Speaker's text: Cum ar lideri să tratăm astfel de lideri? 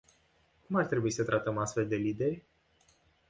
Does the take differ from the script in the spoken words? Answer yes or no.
yes